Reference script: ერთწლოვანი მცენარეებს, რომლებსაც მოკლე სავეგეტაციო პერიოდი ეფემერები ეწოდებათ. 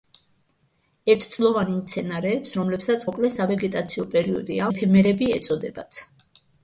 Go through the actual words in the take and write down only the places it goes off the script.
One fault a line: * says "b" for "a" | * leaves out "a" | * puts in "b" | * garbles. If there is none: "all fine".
all fine